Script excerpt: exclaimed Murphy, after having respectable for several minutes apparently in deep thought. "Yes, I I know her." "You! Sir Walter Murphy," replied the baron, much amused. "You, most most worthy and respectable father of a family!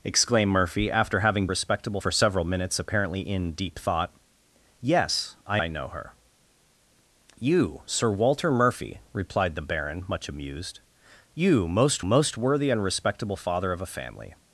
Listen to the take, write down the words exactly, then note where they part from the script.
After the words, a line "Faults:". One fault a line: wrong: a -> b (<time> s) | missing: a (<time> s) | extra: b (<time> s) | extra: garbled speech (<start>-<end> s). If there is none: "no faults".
exclaimed Murphy, after having respectable for several minutes apparently in deep thought. "Yes, I I know her." "You! Sir Walter Murphy," replied the baron, much amused. "You, most most worthy and respectable father of a family!
Faults:
no faults